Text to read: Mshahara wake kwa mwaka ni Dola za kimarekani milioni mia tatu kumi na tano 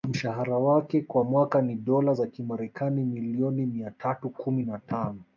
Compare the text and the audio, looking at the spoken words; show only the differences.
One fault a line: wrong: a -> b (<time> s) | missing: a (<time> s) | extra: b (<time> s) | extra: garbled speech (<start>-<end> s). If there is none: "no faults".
no faults